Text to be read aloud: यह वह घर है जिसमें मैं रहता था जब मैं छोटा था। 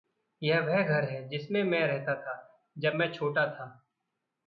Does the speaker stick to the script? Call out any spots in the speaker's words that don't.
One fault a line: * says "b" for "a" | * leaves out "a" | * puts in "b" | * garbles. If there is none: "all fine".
all fine